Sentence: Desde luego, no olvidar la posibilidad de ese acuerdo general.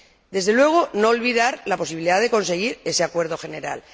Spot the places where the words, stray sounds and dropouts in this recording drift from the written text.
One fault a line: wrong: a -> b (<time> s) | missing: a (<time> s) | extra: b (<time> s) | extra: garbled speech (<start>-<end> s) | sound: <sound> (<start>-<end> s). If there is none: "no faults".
extra: conseguir (2.3 s)